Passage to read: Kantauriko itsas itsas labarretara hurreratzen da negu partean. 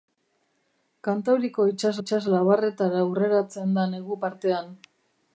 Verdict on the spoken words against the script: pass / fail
pass